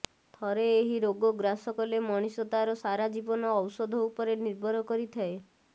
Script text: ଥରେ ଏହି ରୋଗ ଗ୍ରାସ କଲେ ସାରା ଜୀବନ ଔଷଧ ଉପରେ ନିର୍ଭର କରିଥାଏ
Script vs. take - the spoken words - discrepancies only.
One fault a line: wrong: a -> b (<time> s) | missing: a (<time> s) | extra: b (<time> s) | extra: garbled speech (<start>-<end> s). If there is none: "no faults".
extra: ମଣିଷ ତାର (2.0 s)